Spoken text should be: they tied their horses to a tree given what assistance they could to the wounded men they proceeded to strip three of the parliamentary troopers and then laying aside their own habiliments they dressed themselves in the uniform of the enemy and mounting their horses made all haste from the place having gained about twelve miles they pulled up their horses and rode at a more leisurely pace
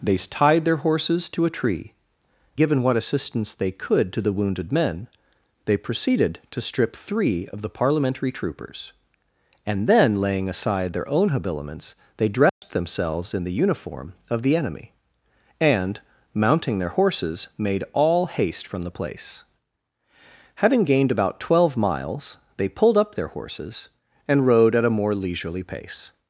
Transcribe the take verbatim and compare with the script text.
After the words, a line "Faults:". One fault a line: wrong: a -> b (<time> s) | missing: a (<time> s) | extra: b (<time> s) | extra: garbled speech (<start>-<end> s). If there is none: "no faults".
they tied their horses to a tree given what assistance they could to the wounded men they proceeded to strip three of the parliamentary troopers and then laying aside their own habiliments they dressed themselves in the uniform of the enemy and mounting their horses made all haste from the place having gained about twelve miles they pulled up their horses and rode at a more leisurely pace
Faults:
no faults